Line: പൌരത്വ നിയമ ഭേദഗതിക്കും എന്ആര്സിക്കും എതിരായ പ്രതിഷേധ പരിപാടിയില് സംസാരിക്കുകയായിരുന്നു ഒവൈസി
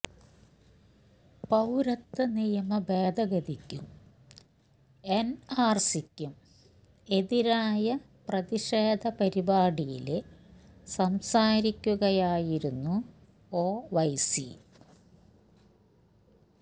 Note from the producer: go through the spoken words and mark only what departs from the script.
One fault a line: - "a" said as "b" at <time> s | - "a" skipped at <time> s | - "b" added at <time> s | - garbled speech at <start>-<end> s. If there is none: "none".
none